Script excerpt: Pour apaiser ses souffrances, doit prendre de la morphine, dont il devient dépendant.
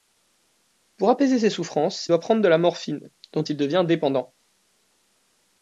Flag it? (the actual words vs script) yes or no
no